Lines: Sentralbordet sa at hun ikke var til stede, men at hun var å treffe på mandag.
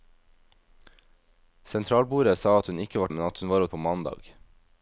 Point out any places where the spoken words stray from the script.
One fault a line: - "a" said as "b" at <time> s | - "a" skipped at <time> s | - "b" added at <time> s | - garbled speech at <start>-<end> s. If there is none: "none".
- "til stede" skipped at 3.1 s
- "treffe" skipped at 3.7 s